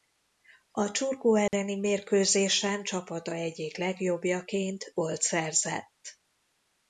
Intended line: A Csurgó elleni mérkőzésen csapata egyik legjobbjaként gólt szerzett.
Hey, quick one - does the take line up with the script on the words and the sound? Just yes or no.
no